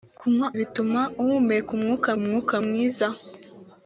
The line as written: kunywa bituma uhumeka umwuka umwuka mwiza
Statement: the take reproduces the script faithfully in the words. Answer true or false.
true